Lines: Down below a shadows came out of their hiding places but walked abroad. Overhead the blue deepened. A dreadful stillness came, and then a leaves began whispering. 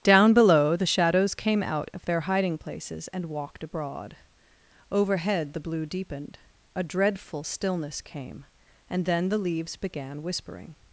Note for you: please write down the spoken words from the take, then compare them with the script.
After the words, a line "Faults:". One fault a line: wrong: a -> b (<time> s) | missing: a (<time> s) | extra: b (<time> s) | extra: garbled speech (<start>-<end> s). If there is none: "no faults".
Down below the shadows came out of their hiding places and walked abroad. Overhead the blue deepened. A dreadful stillness came, and then the leaves began whispering.
Faults:
wrong: a -> the (0.8 s)
wrong: but -> and (3.1 s)
wrong: a -> the (9.3 s)